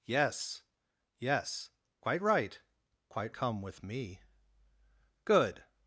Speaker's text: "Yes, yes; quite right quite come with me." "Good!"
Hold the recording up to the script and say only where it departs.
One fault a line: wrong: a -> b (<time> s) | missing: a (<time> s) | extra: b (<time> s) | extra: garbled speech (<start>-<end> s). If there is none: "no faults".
no faults